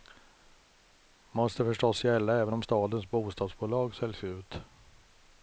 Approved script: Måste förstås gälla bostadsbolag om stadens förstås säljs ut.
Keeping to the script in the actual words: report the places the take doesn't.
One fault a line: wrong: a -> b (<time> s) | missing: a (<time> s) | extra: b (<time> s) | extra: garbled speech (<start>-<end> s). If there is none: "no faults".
wrong: bostadsbolag -> även (2.4 s)
wrong: förstås -> bostadsbolag (3.1 s)